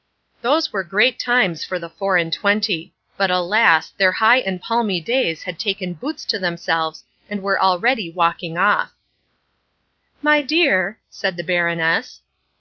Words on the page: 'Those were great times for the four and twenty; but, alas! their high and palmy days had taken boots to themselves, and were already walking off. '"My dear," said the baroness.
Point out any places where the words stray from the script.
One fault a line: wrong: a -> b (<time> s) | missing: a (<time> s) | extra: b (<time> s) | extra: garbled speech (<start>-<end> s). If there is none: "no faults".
no faults